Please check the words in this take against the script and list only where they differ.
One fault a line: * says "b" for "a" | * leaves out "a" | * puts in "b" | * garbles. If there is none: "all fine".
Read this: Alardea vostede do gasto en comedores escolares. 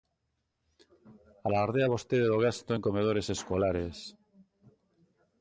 all fine